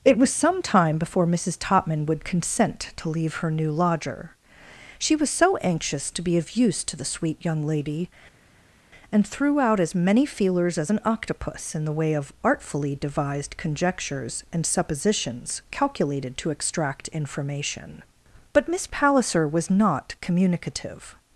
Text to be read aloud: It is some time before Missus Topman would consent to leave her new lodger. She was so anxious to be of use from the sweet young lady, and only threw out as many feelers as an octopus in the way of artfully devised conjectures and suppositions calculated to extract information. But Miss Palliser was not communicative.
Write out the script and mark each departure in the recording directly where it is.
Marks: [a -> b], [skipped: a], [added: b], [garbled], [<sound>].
It [is -> was] some time before Missus Topman would consent to leave her new lodger. She was so anxious to be of use [from -> to] the sweet young lady, and [skipped: only] threw out as many feelers as an octopus in the way of artfully devised conjectures and suppositions calculated to extract information. But Miss Palliser was not communicative.